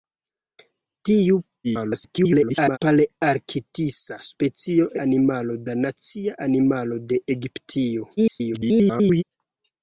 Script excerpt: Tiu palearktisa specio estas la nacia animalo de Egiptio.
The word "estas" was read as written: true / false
false